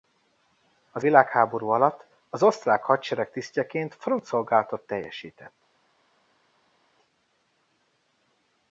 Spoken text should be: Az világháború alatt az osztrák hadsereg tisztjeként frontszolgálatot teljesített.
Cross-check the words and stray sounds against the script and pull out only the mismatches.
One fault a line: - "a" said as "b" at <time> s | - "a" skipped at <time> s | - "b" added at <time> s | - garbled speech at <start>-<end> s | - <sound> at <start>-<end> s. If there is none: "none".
none